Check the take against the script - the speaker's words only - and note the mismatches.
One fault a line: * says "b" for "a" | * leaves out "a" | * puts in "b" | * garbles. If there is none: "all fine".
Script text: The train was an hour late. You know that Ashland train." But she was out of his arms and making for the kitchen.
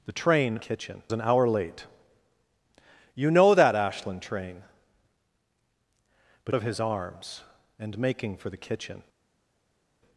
* says "kitchen" for "was"
* leaves out "she was out"